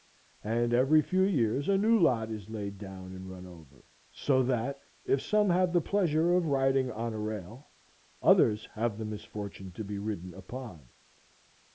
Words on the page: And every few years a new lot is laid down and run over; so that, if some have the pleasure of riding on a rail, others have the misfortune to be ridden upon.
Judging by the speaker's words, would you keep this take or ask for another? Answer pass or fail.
pass